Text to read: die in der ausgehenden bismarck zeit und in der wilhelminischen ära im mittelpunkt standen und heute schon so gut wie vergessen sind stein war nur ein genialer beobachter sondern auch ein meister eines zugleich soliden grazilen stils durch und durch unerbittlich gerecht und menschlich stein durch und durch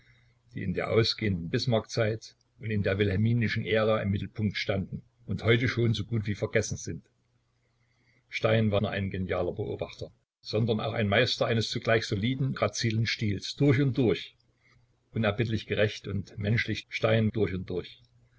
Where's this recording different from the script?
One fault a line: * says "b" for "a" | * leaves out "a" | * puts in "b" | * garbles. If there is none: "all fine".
all fine